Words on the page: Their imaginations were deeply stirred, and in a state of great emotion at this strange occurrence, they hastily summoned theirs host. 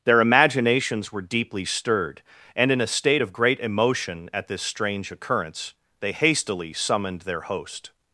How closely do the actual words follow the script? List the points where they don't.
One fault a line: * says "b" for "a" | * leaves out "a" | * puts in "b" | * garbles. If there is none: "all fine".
* says "their" for "theirs"